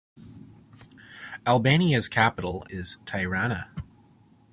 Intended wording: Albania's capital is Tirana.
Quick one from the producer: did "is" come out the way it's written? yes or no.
yes